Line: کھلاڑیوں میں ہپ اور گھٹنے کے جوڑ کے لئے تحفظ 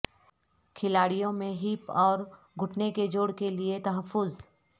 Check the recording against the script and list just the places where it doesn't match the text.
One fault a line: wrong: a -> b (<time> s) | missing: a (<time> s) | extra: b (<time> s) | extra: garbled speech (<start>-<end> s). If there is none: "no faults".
no faults